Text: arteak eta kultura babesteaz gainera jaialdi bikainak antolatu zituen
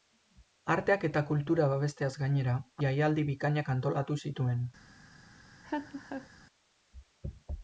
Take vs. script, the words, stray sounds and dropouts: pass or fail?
fail